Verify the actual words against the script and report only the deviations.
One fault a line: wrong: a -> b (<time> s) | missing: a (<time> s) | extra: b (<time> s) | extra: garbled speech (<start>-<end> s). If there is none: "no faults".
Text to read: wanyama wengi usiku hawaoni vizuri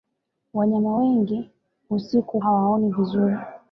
no faults